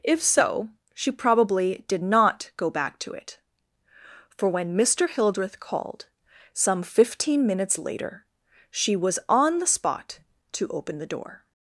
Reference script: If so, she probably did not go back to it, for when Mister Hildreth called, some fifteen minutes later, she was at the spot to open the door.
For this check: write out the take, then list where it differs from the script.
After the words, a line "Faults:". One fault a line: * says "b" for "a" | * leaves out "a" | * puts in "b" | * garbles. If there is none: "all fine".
If so, she probably did not go back to it, for when Mister Hildreth called, some fifteen minutes later, she was on the spot to open the door.
Faults:
* says "on" for "at"